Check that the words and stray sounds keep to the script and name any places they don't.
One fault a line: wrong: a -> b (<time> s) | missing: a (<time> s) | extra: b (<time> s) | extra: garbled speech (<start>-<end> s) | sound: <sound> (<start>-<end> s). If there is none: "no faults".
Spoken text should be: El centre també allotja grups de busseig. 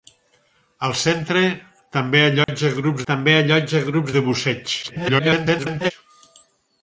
sound: dropout (2.4-2.5 s)
extra: també allotja grups (3.1 s)
extra: garbled speech (4.8-5.9 s)